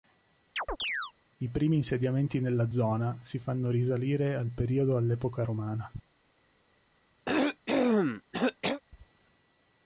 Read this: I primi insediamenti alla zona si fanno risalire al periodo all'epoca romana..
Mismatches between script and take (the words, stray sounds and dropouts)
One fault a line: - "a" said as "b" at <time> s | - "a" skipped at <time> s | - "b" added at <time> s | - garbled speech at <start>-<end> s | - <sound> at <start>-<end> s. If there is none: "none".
- chirp at 0.6-1.1 s
- "alla" said as "nella" at 2.4 s
- cough at 7.3-8.8 s